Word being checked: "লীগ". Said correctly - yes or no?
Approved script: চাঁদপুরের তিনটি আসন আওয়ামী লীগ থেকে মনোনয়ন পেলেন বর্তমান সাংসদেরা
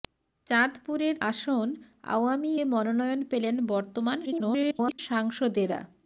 no